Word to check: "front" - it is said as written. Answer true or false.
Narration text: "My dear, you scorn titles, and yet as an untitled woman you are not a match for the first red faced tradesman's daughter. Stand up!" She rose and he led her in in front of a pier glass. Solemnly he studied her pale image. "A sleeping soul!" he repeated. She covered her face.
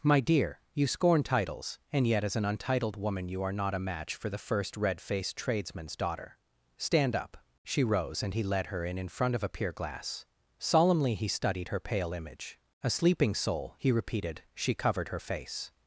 true